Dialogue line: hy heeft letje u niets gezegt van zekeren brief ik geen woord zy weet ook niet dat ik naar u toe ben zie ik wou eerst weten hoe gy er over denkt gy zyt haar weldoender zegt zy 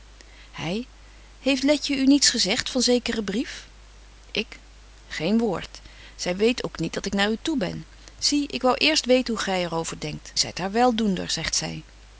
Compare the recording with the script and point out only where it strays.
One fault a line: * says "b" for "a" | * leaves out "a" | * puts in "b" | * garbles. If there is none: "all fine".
* leaves out "gy"